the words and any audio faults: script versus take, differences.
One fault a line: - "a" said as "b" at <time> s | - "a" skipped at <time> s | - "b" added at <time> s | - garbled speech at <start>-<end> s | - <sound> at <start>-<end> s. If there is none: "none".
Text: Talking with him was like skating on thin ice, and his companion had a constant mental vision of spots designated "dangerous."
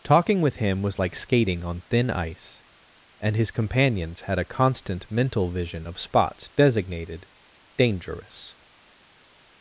- "companion" said as "companions" at 3.5 s